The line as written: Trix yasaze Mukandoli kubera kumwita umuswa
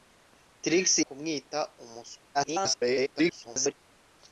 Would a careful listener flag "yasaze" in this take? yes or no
yes